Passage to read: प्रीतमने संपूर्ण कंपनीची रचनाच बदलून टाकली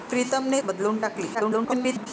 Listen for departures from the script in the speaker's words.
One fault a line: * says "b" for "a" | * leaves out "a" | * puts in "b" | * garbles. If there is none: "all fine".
* leaves out "संपूर्ण कंपनीची रचनाच"
* garbles